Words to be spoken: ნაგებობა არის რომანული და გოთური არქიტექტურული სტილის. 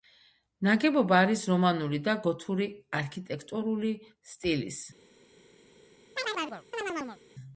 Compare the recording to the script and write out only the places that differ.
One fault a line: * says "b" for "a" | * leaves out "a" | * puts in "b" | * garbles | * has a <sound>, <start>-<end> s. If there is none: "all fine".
* has a chirp, 6.2-7.2 s